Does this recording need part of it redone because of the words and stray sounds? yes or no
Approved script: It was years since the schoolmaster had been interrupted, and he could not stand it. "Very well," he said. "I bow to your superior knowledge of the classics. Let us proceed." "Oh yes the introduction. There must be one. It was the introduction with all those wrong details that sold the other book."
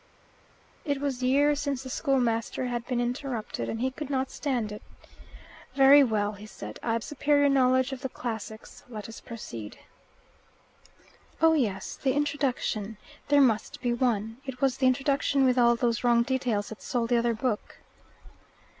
yes